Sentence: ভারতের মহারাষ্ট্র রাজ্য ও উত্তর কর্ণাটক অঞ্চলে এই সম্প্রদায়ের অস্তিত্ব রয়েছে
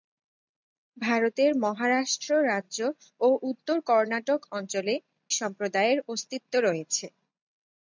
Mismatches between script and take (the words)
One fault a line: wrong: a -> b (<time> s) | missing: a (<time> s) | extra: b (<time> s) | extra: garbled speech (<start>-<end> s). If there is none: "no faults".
missing: এই (4.9 s)